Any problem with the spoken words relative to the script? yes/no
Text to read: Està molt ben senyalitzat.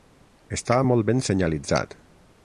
no